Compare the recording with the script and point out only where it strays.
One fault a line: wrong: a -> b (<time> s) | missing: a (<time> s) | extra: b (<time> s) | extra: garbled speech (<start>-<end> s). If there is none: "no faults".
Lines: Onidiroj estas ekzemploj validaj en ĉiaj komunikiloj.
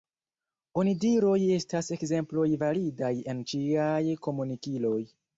no faults